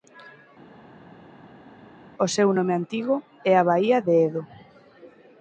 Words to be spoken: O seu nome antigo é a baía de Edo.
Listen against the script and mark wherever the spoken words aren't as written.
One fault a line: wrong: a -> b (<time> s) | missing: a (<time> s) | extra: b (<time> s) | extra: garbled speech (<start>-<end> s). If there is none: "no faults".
no faults